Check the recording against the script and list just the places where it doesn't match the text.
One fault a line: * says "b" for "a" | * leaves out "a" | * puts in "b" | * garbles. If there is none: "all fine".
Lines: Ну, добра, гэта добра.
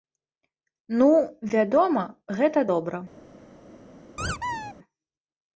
* says "вядома" for "добра"